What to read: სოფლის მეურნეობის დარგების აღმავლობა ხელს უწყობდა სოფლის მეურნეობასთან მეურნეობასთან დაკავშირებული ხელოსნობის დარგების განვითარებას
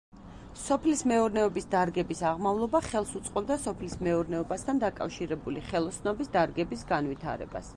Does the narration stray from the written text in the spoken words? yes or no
yes